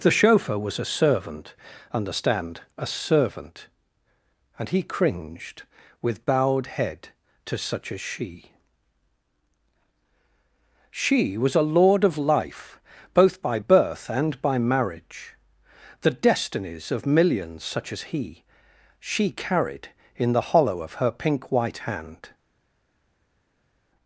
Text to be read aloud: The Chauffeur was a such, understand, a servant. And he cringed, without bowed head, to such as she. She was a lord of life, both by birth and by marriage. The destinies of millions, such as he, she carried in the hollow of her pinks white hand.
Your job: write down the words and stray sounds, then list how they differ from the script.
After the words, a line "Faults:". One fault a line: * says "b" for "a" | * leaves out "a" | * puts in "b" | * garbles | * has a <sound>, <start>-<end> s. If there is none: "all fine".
The Chauffeur was a servant, understand, a servant. And he cringed, with bowed head, to such as she. She was a lord of life, both by birth and by marriage. The destinies of millions, such as he, she carried in the hollow of her pink white hand.
Faults:
* says "servant" for "such"
* says "with" for "without"
* says "pink" for "pinks"